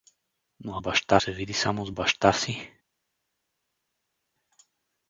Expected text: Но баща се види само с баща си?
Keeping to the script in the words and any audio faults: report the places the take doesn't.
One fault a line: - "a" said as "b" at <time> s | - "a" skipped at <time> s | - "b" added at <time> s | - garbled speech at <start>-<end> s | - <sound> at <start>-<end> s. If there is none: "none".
none